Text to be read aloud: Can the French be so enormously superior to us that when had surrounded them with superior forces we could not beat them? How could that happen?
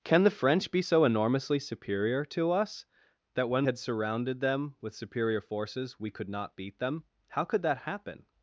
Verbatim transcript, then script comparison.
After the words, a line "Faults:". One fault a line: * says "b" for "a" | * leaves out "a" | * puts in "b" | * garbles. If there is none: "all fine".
Can the French be so enormously superior to us that when had surrounded them with superior forces we could not beat them? How could that happen?
Faults:
all fine